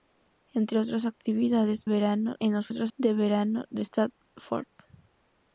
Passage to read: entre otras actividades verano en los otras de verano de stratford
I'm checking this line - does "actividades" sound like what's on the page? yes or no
yes